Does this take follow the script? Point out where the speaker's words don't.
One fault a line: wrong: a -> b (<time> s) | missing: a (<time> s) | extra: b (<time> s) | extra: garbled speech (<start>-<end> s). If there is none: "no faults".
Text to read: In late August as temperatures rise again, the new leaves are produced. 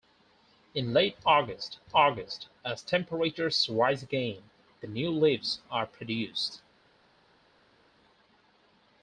extra: August (2.0 s)